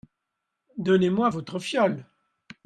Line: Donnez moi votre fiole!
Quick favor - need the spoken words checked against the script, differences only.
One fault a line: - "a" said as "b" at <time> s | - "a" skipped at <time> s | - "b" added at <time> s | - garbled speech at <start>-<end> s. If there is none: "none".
none